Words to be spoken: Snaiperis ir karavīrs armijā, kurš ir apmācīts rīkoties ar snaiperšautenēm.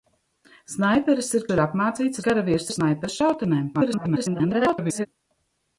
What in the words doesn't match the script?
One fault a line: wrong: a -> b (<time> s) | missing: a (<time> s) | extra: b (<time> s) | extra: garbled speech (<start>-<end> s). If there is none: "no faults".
missing: karavīrs armijā kurš (1.4 s)
wrong: rīkoties -> karavīrs (2.2 s)
extra: garbled speech (3.7-5.1 s)